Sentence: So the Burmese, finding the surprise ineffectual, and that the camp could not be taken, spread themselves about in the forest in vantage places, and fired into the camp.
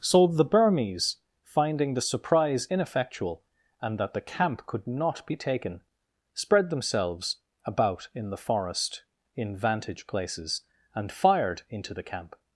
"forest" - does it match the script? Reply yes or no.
yes